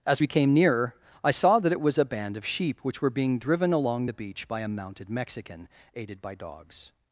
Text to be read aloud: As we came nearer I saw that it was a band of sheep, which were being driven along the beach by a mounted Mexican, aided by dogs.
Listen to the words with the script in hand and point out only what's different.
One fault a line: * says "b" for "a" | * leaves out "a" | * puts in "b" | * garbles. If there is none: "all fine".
all fine